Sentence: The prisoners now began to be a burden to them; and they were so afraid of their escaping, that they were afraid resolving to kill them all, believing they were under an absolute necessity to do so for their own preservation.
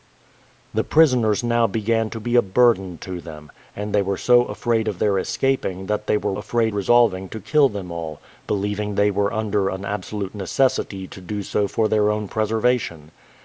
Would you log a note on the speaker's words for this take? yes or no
no